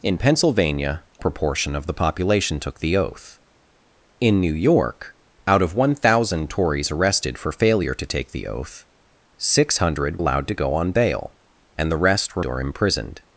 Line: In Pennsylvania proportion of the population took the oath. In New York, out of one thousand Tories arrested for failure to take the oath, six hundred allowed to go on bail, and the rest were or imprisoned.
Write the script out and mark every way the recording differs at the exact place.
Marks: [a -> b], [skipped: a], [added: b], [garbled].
In Pennsylvania proportion of the population took the oath. In New York, out of one thousand Tories arrested for failure to take the oath, six hundred allowed to go on bail, and the rest were or imprisoned.